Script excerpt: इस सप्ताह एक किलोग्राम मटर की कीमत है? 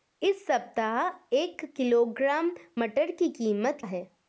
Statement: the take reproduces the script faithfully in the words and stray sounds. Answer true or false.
true